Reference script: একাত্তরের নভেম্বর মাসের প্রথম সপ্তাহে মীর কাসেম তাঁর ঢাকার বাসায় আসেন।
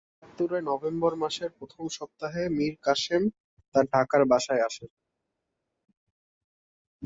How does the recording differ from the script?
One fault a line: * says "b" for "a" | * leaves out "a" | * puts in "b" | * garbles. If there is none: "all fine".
all fine